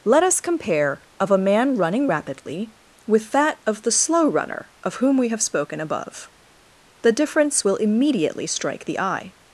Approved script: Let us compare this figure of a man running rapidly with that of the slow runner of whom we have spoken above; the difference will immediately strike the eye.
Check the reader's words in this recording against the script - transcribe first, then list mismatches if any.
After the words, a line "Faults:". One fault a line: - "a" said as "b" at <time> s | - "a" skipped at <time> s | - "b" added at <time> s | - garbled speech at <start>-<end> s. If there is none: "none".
Let us compare of a man running rapidly with that of the slow runner of whom we have spoken above; the difference will immediately strike the eye.
Faults:
- "this figure" skipped at 1.0 s